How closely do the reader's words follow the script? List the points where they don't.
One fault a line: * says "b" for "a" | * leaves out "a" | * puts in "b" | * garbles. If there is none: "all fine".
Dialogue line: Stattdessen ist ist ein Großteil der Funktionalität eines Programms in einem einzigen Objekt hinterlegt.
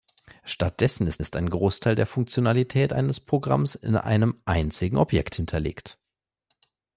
all fine